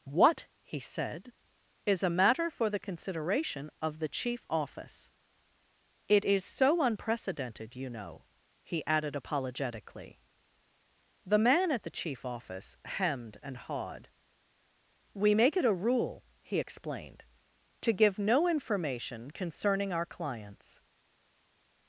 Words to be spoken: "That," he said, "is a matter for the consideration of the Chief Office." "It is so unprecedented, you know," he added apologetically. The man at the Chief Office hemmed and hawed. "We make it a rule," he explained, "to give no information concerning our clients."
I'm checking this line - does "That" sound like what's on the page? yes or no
no